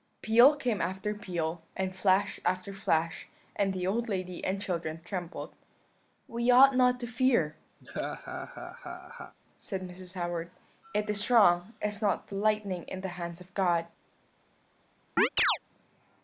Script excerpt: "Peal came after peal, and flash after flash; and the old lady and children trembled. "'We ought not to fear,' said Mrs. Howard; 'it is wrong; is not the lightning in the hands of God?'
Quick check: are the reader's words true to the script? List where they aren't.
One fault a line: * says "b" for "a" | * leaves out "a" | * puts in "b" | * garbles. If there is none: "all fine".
all fine